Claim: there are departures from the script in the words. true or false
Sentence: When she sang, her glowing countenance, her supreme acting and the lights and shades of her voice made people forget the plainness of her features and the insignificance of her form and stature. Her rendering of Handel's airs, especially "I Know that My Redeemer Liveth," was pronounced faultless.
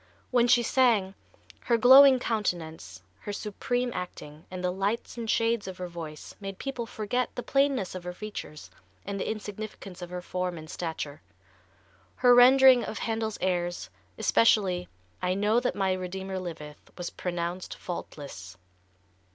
false